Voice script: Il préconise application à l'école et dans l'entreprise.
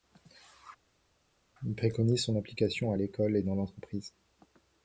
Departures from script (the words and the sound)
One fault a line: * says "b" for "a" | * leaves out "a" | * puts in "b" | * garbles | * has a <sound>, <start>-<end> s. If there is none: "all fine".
* puts in "son"